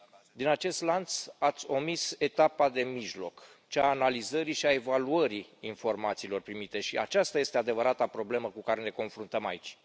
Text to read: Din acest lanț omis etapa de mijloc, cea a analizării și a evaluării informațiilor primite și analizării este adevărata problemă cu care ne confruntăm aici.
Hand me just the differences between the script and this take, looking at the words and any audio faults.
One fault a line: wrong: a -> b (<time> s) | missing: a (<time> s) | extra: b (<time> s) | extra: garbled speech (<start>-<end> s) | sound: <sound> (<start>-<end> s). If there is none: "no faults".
extra: ați (1.4 s)
wrong: analizării -> aceasta (7.0 s)